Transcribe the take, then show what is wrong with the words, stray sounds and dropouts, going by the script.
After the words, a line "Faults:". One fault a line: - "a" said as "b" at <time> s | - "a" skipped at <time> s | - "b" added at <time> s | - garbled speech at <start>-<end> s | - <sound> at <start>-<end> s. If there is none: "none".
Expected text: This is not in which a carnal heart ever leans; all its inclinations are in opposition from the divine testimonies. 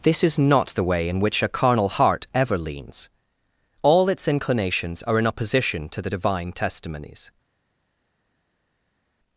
This is not the way in which a carnal heart ever leans; all its inclinations are in opposition to the divine testimonies.
Faults:
- "the way" added at 0.7 s
- "from" said as "to" at 5.9 s